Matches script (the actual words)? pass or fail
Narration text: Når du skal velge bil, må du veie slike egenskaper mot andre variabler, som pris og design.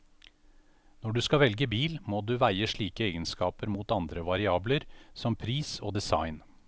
pass